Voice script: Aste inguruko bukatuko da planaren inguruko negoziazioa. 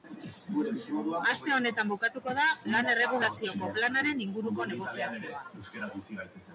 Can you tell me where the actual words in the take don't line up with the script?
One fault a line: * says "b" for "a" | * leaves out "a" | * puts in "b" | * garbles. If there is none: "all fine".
* says "honetan" for "inguruko"
* puts in "lan erregulazioko"